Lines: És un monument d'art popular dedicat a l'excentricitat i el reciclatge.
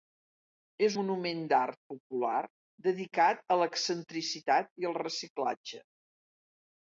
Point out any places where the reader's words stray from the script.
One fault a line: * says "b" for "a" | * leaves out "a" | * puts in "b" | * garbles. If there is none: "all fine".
* leaves out "un"